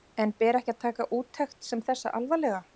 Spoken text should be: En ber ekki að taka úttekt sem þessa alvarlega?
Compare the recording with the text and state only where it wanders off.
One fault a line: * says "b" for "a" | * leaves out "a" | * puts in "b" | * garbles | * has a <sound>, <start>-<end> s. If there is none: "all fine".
all fine